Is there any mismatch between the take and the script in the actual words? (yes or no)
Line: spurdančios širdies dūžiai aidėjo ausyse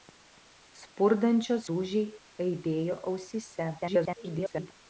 yes